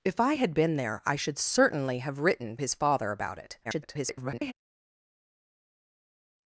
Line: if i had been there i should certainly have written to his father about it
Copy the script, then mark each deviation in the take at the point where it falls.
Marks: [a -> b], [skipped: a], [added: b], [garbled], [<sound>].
if i had been there i should certainly have written [skipped: to] his father about it [garbled]